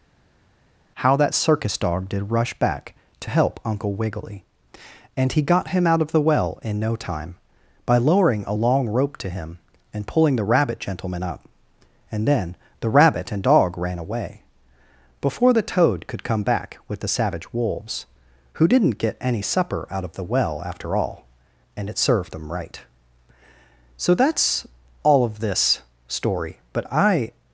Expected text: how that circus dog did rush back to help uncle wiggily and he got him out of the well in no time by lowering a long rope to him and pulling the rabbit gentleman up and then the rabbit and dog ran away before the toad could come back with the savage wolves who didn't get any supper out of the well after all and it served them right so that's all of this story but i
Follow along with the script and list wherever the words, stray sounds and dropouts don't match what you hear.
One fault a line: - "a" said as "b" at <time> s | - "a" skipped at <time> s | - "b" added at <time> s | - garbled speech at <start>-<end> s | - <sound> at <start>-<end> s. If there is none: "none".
none